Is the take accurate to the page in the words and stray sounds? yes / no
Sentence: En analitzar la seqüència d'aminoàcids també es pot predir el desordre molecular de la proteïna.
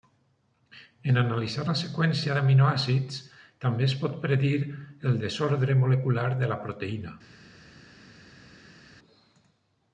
yes